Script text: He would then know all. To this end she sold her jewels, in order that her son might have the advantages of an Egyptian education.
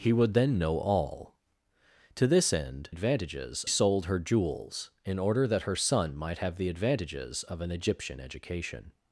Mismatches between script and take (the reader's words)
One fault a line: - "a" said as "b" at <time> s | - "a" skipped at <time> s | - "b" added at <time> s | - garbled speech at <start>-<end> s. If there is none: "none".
- "she" said as "advantages" at 2.9 s